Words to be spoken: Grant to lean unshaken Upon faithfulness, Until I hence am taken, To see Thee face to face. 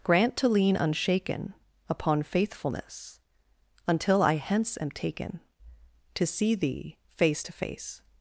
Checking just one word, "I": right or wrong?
right